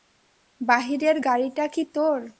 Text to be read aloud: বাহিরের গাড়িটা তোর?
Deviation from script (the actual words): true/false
true